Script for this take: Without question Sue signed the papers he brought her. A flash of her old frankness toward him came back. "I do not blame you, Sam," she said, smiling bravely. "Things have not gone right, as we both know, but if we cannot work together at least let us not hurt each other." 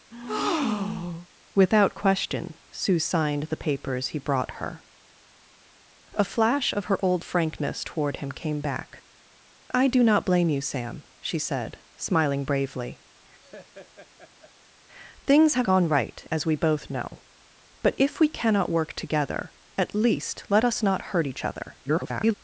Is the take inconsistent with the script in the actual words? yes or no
yes